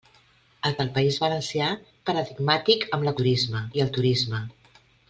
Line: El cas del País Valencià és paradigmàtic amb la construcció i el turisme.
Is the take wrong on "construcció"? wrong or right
wrong